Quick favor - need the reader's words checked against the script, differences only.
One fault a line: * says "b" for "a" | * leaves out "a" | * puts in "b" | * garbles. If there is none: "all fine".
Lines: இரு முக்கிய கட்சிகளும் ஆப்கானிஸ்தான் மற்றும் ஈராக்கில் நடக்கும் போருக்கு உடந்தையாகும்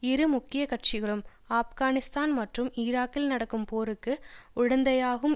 all fine